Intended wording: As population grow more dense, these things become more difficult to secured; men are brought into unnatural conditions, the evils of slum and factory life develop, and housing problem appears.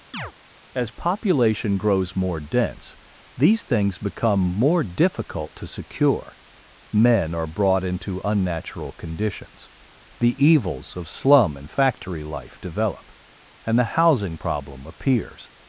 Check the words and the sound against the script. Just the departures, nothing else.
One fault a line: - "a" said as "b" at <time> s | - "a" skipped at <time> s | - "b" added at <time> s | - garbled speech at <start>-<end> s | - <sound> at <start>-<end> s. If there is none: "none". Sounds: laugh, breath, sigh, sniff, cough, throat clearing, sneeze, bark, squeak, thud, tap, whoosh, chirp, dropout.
- chirp at 0.1-0.3 s
- "grow" said as "grows" at 1.8 s
- "secured" said as "secure" at 5.7 s
- "the" added at 13.8 s